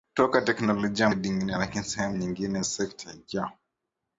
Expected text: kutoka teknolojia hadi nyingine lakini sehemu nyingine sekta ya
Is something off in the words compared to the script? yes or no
no